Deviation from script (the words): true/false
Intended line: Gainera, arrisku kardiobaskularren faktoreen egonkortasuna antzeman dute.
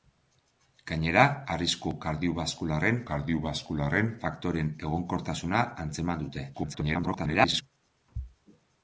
true